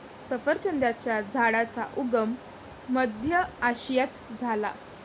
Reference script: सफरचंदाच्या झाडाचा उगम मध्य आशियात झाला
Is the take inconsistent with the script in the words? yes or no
no